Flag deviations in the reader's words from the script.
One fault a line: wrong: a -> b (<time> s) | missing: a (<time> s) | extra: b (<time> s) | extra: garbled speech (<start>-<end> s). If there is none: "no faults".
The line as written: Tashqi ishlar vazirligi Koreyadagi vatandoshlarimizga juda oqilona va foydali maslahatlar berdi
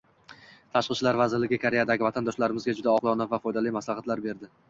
no faults